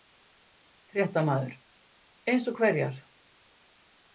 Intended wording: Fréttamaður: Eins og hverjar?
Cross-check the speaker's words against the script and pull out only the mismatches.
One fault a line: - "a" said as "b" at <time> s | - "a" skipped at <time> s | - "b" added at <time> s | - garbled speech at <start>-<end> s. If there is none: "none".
none